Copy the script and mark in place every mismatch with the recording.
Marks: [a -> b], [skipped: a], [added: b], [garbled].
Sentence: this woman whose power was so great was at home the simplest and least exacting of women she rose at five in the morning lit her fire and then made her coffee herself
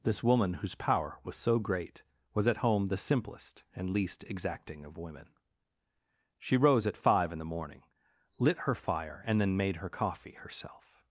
this woman whose power was so great was at home the simplest and least exacting of women she rose at five in the morning lit her fire and then made her coffee herself